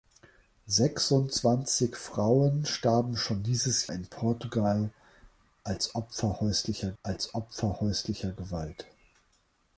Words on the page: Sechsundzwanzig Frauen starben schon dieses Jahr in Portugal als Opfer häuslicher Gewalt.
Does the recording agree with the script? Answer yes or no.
no